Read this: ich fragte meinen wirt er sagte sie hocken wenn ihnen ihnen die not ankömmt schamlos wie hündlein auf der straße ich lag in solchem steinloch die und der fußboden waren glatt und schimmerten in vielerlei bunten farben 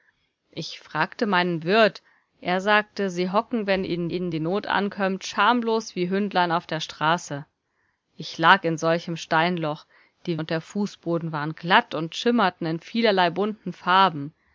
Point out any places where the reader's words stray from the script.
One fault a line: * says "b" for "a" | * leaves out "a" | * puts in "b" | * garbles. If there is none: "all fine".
all fine